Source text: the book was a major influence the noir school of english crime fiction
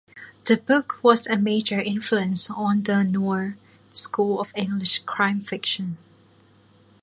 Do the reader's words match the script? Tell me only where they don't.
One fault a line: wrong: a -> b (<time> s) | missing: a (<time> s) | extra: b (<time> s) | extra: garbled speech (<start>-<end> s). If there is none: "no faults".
extra: on (2.5 s)